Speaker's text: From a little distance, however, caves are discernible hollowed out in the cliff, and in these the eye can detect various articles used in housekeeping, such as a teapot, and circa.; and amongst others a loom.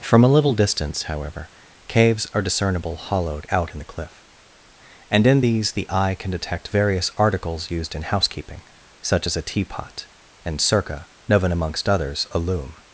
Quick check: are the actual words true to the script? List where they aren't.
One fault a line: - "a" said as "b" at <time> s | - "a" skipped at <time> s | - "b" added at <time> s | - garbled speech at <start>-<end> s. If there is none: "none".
- "and" said as "known" at 11.3 s